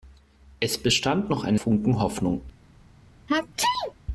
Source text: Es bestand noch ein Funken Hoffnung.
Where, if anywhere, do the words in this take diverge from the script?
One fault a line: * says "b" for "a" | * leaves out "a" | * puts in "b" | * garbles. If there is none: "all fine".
all fine